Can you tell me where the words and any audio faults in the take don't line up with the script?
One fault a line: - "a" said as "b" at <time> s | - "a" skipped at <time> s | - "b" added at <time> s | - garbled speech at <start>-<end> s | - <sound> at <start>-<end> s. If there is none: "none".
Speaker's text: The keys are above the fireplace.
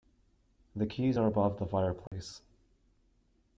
- dropout at 2.1-2.1 s